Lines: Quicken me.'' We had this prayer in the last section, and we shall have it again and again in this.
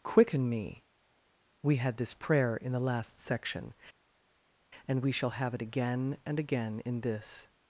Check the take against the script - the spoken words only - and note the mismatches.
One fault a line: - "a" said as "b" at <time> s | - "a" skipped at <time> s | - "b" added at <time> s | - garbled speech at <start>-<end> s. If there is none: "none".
none